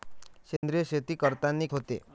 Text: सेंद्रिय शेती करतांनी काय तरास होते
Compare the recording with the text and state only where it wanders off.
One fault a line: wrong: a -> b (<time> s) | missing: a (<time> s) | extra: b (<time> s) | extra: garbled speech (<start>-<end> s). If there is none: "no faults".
missing: काय तरास (1.7 s)